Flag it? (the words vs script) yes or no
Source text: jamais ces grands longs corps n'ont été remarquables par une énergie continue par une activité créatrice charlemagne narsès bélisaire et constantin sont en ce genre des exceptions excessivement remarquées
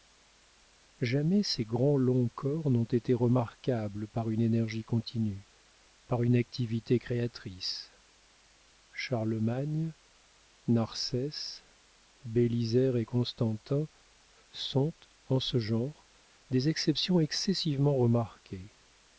no